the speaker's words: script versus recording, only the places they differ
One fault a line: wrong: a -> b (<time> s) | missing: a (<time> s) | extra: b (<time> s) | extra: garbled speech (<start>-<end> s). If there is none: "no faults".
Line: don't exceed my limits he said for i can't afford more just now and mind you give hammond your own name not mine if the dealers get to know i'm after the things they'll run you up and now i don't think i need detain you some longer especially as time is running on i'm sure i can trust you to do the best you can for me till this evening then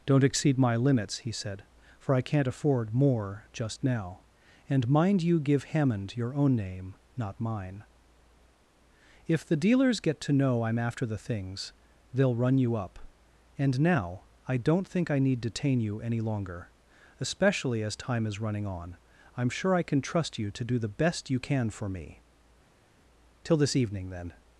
wrong: some -> any (16.0 s)